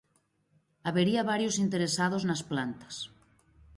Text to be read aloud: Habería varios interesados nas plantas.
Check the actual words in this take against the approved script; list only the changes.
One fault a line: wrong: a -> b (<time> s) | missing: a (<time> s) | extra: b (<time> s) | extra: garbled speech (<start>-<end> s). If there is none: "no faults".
no faults